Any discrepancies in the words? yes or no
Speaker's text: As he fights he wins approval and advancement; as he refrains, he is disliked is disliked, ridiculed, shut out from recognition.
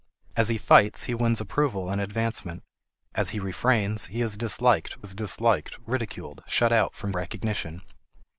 no